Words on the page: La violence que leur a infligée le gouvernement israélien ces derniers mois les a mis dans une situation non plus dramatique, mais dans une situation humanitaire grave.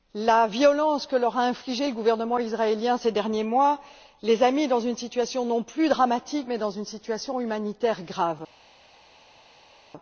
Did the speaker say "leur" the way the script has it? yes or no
yes